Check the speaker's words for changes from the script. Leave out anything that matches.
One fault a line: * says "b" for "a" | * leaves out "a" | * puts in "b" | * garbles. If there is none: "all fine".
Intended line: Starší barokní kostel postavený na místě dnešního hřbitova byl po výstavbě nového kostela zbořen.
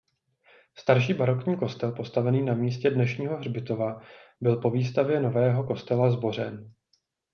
all fine